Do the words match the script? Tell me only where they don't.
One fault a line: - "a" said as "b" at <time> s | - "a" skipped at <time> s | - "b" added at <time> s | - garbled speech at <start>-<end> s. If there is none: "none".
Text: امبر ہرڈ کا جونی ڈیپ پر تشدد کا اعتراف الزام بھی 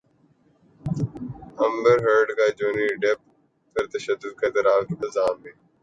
none